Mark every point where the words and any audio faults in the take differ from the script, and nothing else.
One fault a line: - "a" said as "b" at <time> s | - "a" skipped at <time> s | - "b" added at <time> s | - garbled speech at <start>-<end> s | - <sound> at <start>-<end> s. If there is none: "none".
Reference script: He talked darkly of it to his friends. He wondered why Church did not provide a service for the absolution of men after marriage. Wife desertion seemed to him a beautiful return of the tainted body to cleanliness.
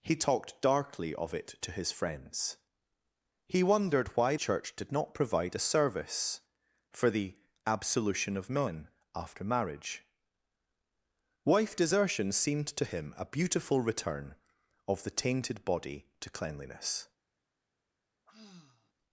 - sigh at 18.3-18.9 s